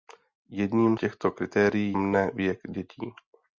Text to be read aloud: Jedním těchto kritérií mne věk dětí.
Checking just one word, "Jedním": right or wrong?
right